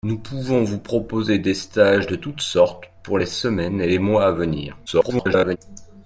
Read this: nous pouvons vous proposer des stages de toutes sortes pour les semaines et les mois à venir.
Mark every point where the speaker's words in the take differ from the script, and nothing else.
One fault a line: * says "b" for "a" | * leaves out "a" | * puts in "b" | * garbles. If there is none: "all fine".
* garbles